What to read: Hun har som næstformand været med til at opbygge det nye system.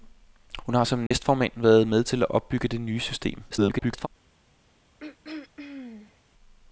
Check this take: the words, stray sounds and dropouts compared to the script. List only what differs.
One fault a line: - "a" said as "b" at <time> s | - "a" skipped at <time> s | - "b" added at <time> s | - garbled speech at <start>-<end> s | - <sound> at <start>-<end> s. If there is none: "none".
- dropout at 1.1-1.1 s
- garbled speech at 3.5-4.1 s
- throat clearing at 5.0-6.2 s